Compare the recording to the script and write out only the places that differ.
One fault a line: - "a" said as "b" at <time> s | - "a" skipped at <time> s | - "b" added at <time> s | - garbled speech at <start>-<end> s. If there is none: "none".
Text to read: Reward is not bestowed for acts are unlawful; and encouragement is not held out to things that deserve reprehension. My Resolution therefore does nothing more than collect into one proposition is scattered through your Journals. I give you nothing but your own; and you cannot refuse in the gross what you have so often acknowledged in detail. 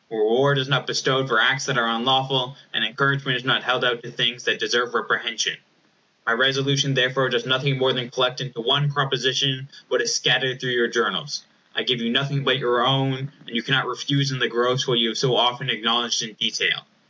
- "that" added at 1.7 s
- "what" added at 9.9 s